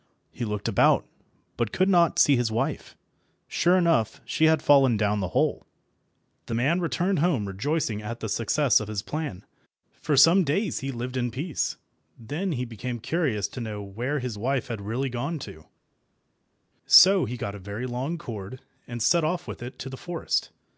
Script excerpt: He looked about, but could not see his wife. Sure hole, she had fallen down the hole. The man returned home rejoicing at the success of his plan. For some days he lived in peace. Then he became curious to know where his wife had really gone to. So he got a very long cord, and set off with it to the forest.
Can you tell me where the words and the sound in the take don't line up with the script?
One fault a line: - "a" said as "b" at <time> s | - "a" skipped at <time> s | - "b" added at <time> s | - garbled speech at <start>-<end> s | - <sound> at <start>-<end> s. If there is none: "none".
- "hole" said as "enough" at 3.8 s